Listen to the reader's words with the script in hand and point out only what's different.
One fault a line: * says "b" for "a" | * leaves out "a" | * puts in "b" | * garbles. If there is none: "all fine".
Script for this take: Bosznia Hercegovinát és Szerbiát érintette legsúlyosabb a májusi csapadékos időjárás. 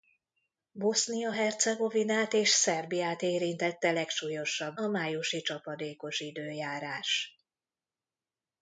all fine